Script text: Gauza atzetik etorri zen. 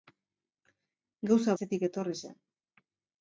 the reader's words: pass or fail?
pass